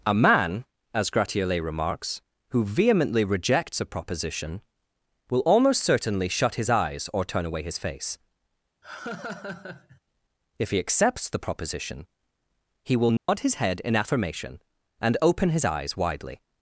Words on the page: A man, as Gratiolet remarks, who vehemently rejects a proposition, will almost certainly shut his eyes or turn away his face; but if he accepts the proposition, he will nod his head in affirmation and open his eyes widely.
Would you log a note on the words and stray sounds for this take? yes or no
yes